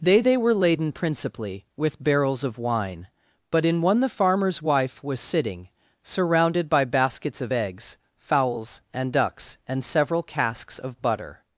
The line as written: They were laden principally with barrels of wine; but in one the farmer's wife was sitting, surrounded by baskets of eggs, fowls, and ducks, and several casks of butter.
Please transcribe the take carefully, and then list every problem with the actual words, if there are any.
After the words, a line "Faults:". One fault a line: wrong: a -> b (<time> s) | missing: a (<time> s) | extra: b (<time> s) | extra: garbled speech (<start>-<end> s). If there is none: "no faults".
They they were laden principally with barrels of wine; but in one the farmer's wife was sitting, surrounded by baskets of eggs, fowls, and ducks, and several casks of butter.
Faults:
extra: they (0.2 s)